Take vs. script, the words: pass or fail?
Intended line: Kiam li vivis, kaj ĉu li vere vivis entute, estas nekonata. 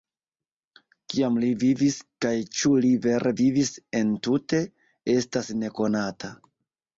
pass